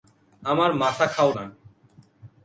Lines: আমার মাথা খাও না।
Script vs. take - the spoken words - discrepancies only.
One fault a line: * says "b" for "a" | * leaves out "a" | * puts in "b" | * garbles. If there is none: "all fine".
all fine